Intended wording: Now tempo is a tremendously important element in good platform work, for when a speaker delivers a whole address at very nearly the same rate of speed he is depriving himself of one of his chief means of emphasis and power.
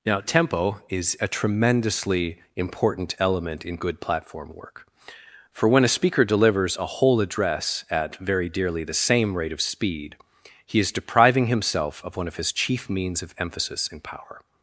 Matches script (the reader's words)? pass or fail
fail